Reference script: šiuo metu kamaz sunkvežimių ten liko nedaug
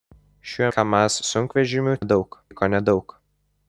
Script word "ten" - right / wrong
wrong